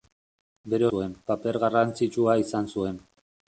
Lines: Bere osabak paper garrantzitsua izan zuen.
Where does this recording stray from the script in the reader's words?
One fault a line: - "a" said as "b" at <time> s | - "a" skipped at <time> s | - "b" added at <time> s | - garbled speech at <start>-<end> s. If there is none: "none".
- "osabak" said as "zuen" at 0.9 s